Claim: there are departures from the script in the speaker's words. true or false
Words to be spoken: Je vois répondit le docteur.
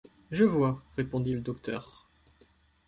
false